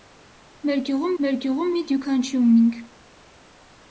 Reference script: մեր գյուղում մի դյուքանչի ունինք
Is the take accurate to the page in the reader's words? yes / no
no